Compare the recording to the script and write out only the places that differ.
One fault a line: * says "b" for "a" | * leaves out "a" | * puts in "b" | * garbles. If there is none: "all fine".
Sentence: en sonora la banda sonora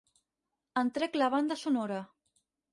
* says "trec" for "sonora"